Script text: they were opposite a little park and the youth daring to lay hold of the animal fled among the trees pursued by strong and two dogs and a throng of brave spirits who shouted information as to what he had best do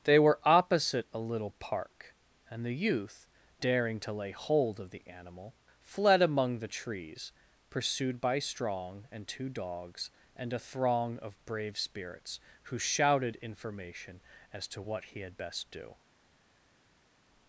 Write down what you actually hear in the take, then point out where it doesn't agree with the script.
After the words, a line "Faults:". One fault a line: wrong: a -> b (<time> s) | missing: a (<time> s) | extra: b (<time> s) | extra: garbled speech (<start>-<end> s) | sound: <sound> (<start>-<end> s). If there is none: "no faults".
they were opposite a little park and the youth daring to lay hold of the animal fled among the trees pursued by strong and two dogs and a throng of brave spirits who shouted information as to what he had best do
Faults:
no faults